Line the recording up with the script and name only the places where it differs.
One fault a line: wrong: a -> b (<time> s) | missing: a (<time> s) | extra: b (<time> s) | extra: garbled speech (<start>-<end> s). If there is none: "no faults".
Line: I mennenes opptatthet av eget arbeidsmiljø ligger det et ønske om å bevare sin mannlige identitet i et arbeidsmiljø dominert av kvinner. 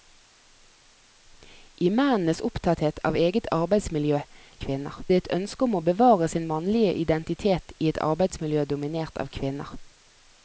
wrong: ligger -> kvinner (4.7 s)